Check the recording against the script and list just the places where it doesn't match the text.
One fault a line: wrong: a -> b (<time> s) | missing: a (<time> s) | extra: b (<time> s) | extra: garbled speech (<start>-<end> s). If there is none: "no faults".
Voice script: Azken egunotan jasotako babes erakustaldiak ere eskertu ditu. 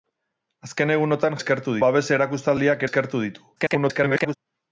wrong: jasotako -> eskertu (1.4 s)
missing: ere (2.9 s)
extra: garbled speech (3.6-4.4 s)